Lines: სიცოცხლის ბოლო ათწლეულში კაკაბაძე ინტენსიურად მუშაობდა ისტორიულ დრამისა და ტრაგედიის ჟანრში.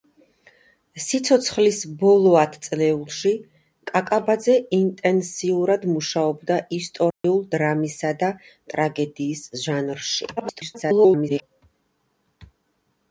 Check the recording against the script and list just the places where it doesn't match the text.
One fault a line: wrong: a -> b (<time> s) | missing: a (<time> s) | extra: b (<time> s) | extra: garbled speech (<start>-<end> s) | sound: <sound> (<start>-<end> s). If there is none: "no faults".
sound: dropout (7.1-7.2 s)
extra: garbled speech (10.4-11.4 s)